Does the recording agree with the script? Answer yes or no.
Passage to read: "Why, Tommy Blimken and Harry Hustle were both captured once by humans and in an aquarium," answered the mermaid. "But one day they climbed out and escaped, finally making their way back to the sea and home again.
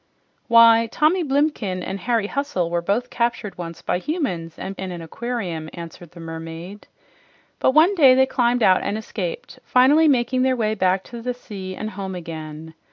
yes